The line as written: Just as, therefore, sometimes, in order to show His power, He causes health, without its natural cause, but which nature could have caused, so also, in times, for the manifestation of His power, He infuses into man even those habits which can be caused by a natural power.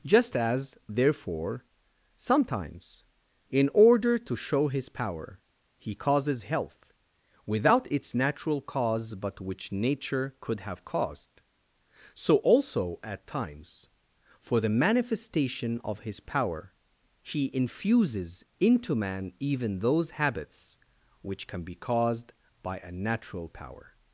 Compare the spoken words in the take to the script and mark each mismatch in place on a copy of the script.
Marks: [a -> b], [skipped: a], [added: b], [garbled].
Just as, therefore, sometimes, in order to show His power, He causes health, without its natural cause, but which nature could have caused, so also, [in -> at] times, for the manifestation of His power, He infuses into man even those habits which can be caused by a natural power.